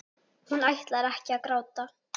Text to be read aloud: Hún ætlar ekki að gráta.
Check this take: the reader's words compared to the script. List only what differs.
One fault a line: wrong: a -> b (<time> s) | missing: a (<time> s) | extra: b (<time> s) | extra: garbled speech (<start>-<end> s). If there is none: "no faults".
no faults